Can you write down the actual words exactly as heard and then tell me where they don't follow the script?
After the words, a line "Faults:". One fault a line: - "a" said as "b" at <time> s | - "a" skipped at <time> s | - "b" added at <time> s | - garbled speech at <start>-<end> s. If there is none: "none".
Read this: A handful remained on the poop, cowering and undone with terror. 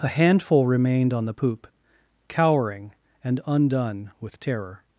A handful remained on the poop, cowering and undone with terror.
Faults:
none